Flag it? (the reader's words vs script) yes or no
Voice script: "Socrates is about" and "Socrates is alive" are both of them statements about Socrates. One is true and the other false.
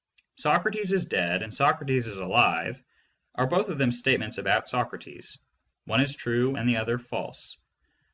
yes